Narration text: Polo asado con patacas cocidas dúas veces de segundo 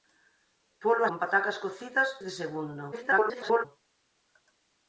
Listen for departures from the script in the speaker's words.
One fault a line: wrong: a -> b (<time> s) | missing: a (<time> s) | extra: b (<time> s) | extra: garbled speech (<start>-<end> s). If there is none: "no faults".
missing: asado (1.0 s)
missing: dúas veces (2.1 s)
extra: garbled speech (2.9-3.7 s)